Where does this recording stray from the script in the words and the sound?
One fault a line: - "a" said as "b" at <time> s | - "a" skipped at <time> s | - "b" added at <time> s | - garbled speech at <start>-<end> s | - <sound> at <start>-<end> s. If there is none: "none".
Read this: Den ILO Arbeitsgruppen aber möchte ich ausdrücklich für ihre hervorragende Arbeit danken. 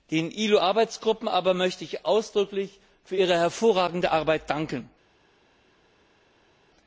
none